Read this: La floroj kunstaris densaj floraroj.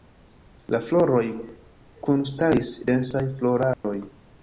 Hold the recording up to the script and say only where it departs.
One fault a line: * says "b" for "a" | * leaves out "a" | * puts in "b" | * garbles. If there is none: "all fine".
all fine